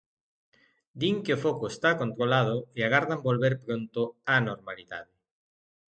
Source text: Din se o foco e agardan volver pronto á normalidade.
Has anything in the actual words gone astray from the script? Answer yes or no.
yes